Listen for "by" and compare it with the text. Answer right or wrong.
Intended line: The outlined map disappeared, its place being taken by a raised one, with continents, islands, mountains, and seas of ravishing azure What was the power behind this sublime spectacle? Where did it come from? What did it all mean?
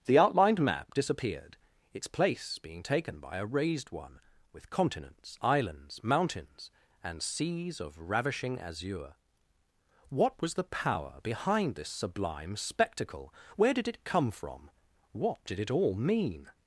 right